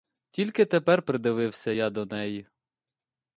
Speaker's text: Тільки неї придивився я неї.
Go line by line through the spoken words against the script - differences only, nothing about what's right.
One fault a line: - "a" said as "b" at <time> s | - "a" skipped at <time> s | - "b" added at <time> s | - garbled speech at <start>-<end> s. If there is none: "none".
- "неї" said as "тепер" at 0.7 s
- "до" added at 1.9 s